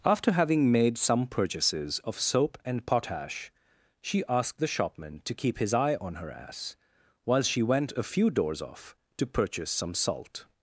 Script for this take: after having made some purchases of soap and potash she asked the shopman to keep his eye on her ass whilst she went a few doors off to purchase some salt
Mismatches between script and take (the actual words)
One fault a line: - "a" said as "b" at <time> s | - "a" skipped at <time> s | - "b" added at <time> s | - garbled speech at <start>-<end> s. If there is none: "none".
- "whilst" said as "while" at 7.2 s